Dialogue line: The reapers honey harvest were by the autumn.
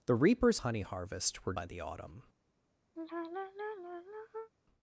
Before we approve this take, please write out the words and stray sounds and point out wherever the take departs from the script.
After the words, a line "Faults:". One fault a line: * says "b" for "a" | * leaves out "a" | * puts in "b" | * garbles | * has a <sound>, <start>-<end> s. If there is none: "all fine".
The reapers honey harvest were by the autumn.
Faults:
* has a sigh, 3.0-4.5 s